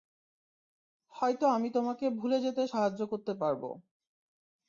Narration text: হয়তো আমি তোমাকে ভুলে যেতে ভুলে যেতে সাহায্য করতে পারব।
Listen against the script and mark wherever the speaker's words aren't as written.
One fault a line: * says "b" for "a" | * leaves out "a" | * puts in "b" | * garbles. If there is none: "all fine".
* leaves out "ভুলে যেতে"